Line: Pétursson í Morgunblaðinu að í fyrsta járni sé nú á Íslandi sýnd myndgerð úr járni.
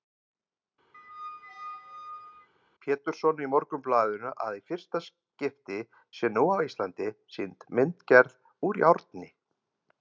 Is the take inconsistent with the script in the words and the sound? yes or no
yes